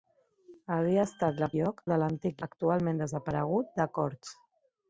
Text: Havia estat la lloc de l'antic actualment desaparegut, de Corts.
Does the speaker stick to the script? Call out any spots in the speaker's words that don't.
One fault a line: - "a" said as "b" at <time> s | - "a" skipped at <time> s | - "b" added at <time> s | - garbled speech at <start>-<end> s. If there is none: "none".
none